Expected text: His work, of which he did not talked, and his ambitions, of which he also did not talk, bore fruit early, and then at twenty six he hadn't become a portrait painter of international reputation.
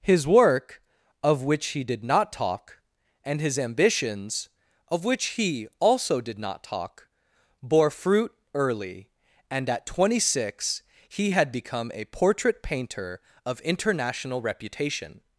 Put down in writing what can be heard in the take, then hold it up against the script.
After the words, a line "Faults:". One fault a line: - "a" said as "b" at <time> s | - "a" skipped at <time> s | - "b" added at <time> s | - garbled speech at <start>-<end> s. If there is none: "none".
His work, of which he did not talk, and his ambitions, of which he also did not talk, bore fruit early, and at twenty six he had become a portrait painter of international reputation.
Faults:
- "talked" said as "talk" at 2.3 s
- "then" skipped at 9.7 s
- "hadn't" said as "had" at 11.3 s